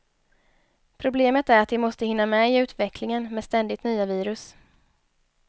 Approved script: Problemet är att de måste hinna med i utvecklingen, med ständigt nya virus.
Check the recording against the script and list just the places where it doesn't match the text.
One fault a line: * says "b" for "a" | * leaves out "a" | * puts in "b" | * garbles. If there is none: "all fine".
all fine